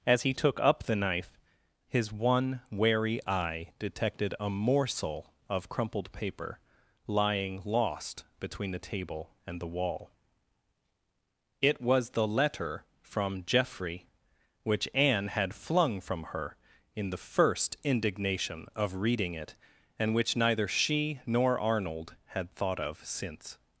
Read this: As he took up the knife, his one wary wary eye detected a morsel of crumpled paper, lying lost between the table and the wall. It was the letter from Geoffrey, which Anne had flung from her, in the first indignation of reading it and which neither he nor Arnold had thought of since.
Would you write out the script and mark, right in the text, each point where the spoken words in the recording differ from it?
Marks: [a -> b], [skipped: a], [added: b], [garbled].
As he took up the knife, his one wary [skipped: wary] eye detected a morsel of crumpled paper, lying lost between the table and the wall. It was the letter from Geoffrey, which Anne had flung from her, in the first indignation of reading it and which neither [he -> she] nor Arnold had thought of since.